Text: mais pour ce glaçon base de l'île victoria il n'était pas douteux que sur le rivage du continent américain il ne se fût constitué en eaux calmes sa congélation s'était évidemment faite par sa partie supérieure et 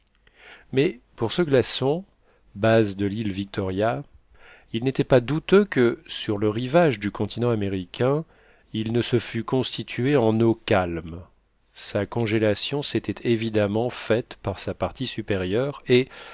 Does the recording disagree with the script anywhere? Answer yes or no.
no